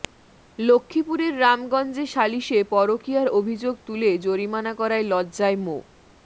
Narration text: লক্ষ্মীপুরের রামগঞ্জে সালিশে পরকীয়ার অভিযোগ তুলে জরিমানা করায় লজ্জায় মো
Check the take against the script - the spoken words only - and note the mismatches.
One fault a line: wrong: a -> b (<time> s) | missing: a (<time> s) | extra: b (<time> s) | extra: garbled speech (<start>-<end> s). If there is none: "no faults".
no faults